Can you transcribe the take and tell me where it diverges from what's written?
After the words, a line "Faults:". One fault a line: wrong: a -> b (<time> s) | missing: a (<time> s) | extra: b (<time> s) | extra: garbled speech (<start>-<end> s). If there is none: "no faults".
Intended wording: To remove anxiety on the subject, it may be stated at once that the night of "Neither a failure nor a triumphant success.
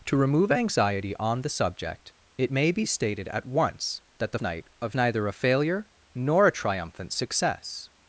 To remove anxiety on the subject, it may be stated at once that the night of "Neither a failure nor a triumphant success.
Faults:
no faults